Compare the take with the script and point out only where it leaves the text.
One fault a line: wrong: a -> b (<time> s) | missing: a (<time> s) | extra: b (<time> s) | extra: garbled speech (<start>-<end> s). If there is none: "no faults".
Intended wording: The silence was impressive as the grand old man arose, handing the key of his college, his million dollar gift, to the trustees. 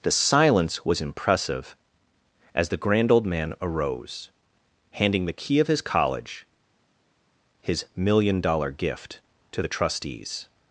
no faults